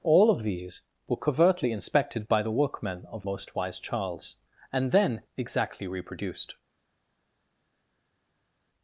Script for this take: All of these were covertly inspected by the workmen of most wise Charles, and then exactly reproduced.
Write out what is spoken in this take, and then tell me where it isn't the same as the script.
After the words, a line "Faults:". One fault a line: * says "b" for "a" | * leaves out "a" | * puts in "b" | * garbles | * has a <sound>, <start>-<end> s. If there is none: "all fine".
All of these were covertly inspected by the workmen of most wise Charles, and then exactly reproduced.
Faults:
all fine